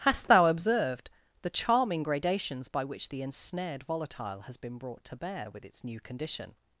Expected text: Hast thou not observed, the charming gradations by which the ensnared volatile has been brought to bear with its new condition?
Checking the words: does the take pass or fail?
fail